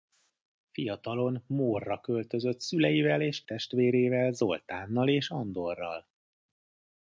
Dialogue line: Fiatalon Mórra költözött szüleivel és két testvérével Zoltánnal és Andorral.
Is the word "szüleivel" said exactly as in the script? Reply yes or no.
yes